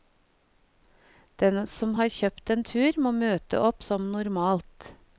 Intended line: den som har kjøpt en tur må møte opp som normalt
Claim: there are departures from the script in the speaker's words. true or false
false